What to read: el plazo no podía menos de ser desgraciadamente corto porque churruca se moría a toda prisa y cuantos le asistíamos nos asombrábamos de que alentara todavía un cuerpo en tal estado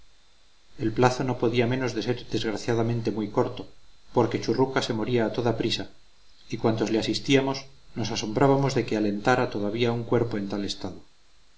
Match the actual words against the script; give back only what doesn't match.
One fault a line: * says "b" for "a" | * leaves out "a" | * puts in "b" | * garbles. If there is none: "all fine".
* puts in "muy"